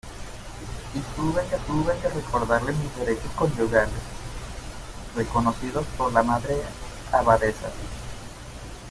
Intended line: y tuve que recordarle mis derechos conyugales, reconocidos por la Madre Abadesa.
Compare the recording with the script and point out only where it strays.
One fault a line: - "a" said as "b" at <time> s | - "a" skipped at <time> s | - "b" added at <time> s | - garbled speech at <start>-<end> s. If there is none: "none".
- "tuve que" added at 1.7 s